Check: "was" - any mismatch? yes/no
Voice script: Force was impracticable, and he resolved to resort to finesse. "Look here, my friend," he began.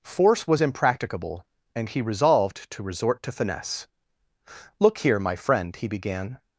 no